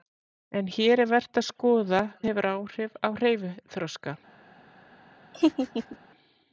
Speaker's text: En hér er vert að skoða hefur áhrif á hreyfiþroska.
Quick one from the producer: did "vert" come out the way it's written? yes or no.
yes